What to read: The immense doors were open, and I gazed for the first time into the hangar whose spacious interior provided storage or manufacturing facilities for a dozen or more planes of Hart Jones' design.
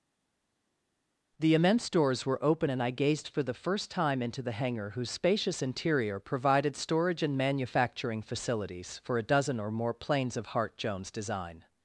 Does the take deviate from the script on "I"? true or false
false